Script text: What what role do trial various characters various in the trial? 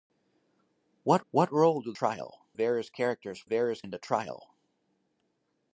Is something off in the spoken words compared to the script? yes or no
no